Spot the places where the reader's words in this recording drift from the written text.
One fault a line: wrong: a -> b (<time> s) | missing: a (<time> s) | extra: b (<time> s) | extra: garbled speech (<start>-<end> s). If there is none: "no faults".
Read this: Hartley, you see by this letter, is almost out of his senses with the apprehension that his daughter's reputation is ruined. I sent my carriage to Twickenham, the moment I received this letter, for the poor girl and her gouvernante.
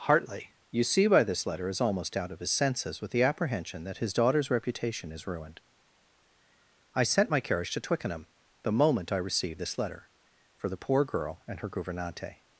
no faults